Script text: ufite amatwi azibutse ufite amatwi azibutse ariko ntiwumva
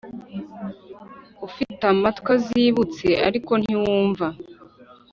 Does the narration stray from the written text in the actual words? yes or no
yes